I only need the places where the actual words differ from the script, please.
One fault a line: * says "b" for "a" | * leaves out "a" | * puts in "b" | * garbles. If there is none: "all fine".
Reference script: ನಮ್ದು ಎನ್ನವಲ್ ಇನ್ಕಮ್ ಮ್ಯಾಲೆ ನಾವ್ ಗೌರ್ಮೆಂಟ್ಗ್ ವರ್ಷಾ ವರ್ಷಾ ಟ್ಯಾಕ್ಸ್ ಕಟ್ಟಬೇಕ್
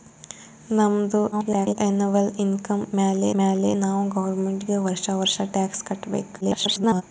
* garbles
* puts in "ಮ್ಯಾಲೆ"
* garbles